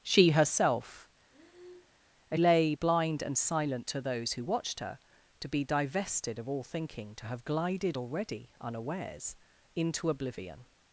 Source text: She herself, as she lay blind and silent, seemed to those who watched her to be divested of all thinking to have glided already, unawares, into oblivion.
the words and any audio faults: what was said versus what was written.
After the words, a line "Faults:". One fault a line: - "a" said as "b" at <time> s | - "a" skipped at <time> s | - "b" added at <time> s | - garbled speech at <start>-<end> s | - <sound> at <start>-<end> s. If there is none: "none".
She herself, as lay blind and silent, to those who watched her to be divested of all thinking to have glided already, unawares, into oblivion.
Faults:
- breath at 1.3-2.0 s
- "she" skipped at 2.4 s
- "seemed" skipped at 3.9 s